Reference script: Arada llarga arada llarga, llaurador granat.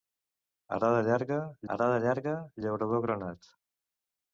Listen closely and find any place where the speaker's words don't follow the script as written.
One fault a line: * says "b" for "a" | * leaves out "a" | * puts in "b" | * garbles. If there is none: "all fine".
all fine